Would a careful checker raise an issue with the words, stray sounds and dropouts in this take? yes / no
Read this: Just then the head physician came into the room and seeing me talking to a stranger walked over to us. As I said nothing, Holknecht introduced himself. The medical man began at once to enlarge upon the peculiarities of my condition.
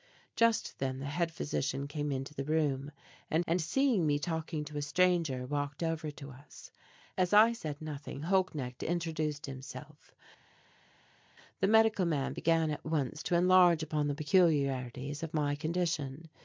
yes